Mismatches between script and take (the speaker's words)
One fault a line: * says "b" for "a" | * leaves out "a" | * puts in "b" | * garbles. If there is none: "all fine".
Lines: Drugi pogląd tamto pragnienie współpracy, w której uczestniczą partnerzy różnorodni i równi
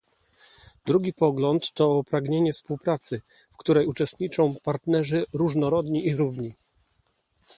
* says "to" for "tamto"